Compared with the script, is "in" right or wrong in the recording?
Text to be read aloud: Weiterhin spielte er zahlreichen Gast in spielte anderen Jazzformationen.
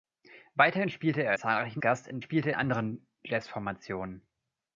right